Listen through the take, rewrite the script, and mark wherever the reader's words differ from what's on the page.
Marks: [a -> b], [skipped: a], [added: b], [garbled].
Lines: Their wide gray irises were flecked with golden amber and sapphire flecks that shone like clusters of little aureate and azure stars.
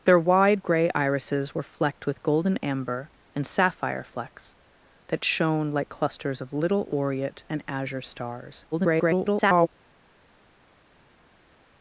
Their wide gray irises were flecked with golden amber and sapphire flecks that shone like clusters of little aureate and azure stars. [garbled]